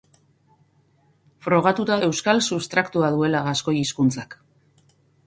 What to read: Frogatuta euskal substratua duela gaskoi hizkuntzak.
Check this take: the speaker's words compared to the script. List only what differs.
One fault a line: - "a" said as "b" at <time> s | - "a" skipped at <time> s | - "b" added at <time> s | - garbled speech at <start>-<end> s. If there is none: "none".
none